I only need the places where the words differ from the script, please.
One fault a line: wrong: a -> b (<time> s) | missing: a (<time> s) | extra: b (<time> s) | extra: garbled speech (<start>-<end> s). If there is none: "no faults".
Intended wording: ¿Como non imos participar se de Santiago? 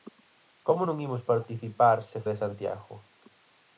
no faults